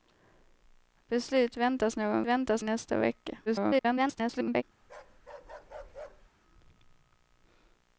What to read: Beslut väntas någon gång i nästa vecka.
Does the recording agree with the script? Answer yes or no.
no